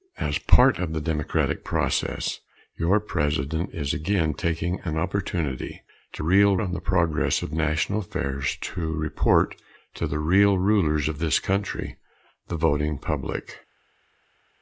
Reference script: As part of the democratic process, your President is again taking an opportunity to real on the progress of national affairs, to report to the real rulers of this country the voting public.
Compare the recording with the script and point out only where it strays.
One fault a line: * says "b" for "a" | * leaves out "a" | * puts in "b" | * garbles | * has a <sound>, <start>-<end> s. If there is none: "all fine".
all fine